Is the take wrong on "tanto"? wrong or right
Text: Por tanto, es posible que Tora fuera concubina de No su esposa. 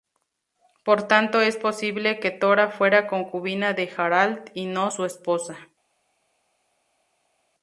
right